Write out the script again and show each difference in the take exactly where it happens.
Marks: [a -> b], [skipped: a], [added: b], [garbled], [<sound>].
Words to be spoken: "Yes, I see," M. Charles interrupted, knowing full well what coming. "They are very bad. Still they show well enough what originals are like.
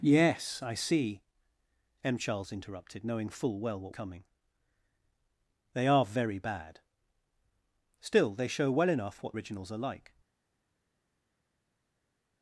"Yes, I see," M. Charles interrupted, knowing full well what coming. "They are very bad. Still they show well enough what originals are like.